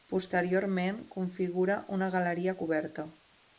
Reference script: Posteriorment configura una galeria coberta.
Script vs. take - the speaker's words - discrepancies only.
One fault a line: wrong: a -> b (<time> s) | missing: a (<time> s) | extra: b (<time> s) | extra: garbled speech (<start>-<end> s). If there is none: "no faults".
no faults